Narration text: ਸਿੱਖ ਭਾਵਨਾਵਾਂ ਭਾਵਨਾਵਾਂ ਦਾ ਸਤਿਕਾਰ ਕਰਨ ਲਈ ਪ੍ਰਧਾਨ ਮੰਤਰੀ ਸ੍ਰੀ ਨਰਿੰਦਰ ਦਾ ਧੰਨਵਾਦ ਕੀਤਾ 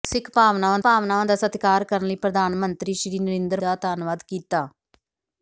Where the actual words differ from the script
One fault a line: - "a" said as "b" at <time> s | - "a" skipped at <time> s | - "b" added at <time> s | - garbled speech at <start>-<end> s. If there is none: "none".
none